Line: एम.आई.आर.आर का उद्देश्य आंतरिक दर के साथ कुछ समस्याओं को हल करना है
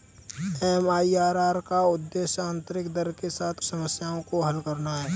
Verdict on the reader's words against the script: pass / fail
fail